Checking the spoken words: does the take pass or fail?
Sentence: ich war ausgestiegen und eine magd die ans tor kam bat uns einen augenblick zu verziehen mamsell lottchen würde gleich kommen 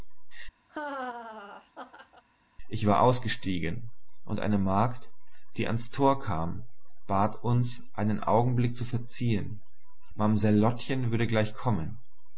pass